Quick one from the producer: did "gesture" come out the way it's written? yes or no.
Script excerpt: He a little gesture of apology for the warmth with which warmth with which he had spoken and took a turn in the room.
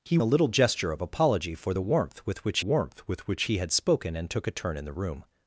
yes